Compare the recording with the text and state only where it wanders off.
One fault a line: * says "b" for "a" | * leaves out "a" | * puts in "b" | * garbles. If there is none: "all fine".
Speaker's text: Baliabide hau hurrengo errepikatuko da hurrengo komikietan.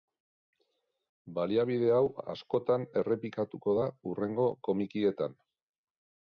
* says "askotan" for "hurrengo"